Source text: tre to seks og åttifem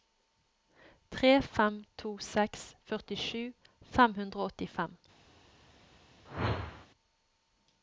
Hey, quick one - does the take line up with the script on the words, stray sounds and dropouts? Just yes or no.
no